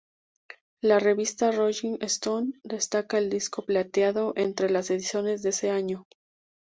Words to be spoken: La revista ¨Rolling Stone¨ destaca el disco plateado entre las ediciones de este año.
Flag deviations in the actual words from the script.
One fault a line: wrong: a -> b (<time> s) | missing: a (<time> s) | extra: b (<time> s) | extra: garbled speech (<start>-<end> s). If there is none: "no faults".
wrong: este -> ese (5.5 s)